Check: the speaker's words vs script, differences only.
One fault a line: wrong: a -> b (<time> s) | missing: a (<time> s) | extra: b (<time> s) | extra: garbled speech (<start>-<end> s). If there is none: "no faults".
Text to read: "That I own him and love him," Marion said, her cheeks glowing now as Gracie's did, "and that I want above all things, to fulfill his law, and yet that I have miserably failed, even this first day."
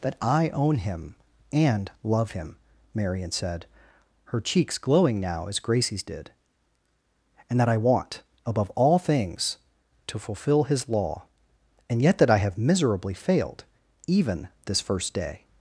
no faults